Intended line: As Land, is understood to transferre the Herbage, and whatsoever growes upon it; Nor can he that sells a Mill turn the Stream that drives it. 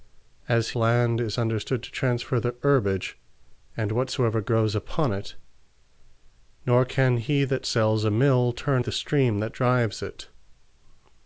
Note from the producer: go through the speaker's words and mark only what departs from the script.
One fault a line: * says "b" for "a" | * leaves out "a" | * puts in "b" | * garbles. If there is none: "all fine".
all fine